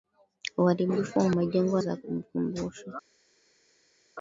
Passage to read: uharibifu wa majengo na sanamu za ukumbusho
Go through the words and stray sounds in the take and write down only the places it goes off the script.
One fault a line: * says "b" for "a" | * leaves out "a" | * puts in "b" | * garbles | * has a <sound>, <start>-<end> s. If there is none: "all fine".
* leaves out "na sanamu"